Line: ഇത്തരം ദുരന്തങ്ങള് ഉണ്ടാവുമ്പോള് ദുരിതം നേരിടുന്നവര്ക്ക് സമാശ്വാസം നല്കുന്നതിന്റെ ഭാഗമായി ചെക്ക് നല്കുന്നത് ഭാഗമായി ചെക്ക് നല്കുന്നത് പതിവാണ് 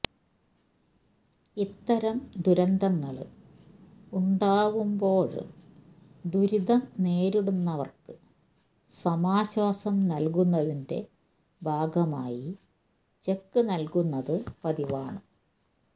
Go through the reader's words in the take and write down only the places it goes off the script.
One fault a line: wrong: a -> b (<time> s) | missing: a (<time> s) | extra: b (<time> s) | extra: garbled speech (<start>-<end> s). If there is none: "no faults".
missing: ഭാഗമായി ചെക്ക് നല്കുന്നത് (14.3 s)